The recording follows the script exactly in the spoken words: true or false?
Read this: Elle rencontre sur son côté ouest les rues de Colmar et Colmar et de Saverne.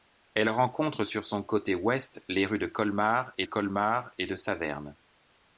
true